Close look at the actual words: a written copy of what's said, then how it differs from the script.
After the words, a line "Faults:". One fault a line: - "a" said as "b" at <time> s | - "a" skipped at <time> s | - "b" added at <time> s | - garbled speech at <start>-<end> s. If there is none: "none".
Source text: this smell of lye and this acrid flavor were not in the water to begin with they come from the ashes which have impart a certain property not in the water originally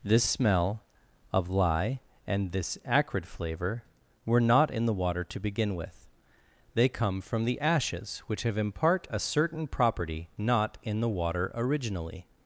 this smell of lye and this acrid flavor were not in the water to begin with they come from the ashes which have impart a certain property not in the water originally
Faults:
none